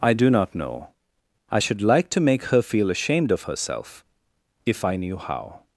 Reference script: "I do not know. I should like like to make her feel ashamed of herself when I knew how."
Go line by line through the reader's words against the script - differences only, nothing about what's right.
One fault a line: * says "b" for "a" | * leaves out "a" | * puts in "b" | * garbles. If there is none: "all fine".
* leaves out "like"
* says "if" for "when"